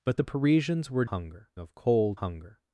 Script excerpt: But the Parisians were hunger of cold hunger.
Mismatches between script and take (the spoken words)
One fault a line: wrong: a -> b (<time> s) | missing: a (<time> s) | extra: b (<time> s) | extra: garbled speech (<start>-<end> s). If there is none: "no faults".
no faults